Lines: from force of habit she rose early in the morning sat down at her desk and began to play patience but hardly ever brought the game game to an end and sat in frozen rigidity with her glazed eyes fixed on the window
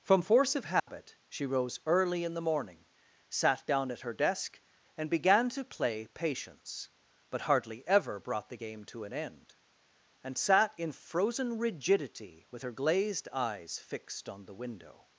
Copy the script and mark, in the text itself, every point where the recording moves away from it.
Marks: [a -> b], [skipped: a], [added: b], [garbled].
from force of habit she rose early in the morning sat down at her desk and began to play patience but hardly ever brought the game [skipped: game] to an end and sat in frozen rigidity with her glazed eyes fixed on the window